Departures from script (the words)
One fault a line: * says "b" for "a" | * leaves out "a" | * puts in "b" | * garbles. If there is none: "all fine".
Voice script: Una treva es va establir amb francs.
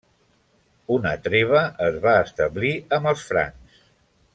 * puts in "els"